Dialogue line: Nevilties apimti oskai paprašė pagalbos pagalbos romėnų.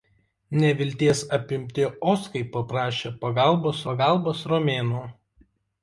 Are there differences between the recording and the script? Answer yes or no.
no